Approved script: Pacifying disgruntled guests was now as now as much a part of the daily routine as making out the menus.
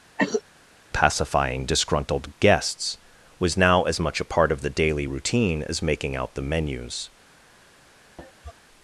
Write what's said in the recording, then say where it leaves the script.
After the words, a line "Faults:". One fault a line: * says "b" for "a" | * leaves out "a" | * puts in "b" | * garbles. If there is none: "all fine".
Pacifying disgruntled guests was now as much a part of the daily routine as making out the menus.
Faults:
* leaves out "now as"